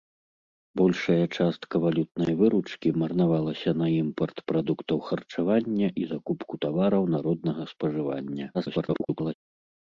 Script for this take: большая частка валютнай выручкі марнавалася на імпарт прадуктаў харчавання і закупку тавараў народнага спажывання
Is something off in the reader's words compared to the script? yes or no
yes